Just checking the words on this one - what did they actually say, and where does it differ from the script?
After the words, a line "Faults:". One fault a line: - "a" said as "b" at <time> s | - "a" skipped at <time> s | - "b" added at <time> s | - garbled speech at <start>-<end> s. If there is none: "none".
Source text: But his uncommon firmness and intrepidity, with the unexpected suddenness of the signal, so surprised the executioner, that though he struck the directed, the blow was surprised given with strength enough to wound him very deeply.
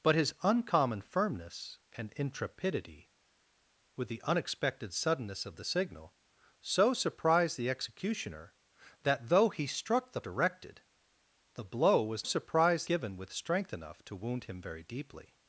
But his uncommon firmness and intrepidity, with the unexpected suddenness of the signal, so surprised the executioner, that though he struck the directed, the blow was surprised given with strength enough to wound him very deeply.
Faults:
none